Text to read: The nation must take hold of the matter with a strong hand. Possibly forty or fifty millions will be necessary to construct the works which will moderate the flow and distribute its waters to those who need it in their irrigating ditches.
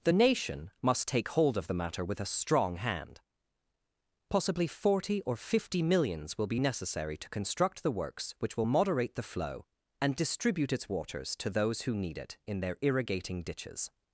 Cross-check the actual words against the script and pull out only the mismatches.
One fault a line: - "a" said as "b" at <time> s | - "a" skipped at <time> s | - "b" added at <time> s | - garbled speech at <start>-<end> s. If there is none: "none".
none